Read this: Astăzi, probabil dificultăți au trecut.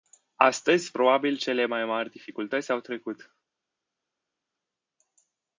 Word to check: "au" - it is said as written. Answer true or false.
true